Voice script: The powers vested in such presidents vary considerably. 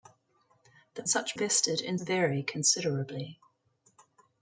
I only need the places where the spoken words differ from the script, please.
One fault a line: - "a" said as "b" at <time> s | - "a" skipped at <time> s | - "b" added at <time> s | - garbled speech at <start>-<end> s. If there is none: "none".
- "powers" said as "such" at 1.0 s
- "such presidents" skipped at 2.0 s